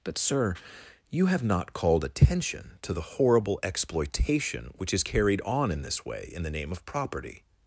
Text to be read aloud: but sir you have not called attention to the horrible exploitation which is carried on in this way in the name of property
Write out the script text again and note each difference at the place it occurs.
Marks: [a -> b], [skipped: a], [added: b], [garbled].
but sir you have not called attention to the horrible exploitation which is carried on in this way in the name of property